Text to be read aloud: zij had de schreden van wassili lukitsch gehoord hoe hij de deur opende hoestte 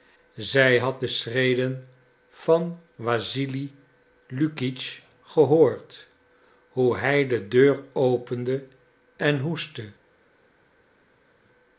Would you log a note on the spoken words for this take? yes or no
yes